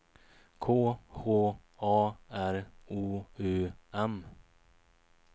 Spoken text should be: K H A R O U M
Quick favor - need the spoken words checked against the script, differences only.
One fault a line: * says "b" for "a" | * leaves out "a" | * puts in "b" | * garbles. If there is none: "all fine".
all fine